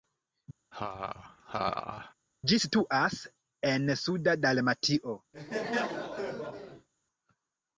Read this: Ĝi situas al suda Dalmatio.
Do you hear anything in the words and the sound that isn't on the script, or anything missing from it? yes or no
yes